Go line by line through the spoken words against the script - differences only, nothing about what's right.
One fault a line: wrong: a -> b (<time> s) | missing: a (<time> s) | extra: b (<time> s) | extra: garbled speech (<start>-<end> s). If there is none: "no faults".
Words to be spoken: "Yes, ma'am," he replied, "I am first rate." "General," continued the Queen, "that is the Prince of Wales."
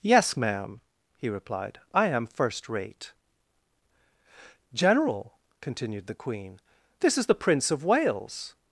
wrong: that -> this (7.0 s)